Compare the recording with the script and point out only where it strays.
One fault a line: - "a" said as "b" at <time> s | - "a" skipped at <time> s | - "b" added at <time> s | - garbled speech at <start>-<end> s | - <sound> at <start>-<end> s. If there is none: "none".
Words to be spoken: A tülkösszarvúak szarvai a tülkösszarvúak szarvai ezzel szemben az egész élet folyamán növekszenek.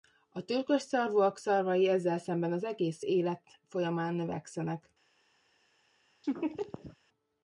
- "a tülkösszarvúak szarvai" skipped at 1.9 s
- laugh at 6.2-7.0 s